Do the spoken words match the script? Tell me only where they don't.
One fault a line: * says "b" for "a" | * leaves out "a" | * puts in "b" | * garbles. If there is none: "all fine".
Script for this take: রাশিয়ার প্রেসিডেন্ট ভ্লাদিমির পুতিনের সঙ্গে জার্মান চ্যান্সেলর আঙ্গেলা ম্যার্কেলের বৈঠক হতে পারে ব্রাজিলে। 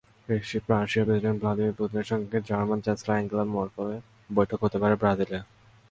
all fine